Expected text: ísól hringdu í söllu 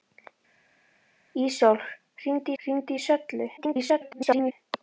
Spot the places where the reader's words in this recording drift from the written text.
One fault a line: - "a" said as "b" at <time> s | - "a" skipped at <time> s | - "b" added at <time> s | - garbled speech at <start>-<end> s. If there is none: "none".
- "hringdu" added at 2.6 s
- garbled speech at 3.6-4.5 s